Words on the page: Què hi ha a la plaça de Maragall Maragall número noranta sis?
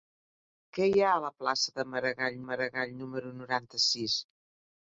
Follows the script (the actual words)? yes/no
yes